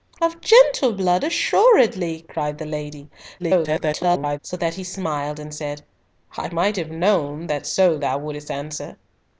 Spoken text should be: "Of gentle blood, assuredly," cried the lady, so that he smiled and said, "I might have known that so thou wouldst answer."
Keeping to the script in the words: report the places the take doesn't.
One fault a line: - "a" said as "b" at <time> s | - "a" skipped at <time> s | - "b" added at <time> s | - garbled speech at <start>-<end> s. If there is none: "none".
- garbled speech at 3.4-4.4 s